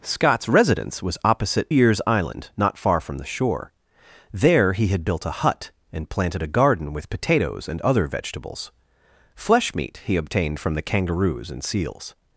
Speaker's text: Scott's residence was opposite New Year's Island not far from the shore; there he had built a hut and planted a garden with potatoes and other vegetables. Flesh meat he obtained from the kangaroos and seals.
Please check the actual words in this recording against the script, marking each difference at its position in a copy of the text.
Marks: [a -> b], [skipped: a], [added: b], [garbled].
Scott's residence was opposite [skipped: New] Year's Island not far from the shore; there he had built a hut and planted a garden with potatoes and other vegetables. Flesh meat he obtained from the kangaroos and seals.